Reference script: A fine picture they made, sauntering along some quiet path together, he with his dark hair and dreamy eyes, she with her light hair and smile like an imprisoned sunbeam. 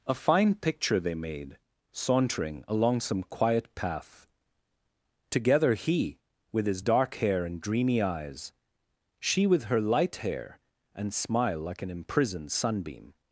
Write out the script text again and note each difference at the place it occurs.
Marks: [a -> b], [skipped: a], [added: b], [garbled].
A fine picture they made, sauntering along some quiet path together, he with his dark hair and dreamy eyes, she with her light hair and smile like an imprisoned sunbeam.